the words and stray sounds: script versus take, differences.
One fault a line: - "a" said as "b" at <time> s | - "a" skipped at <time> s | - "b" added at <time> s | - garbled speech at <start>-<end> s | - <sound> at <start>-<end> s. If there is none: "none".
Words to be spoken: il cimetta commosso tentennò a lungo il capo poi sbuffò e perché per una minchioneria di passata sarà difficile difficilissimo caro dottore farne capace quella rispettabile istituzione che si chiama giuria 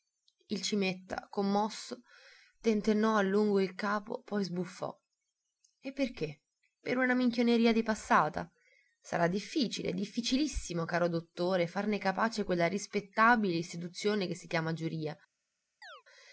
- chirp at 15.8-16.0 s